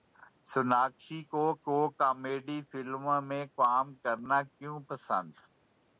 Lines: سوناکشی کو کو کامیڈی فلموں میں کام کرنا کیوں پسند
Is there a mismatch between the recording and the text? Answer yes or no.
no